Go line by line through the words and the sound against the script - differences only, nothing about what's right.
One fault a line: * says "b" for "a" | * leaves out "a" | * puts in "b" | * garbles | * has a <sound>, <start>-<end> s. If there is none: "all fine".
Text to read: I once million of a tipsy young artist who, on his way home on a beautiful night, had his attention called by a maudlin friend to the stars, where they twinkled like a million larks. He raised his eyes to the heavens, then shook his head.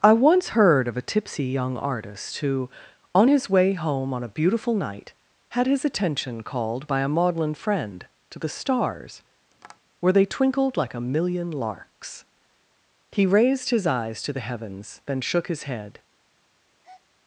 * says "heard" for "million"
* has a tap, 9.5-9.8 s
* has a breath, 16.8-17.0 s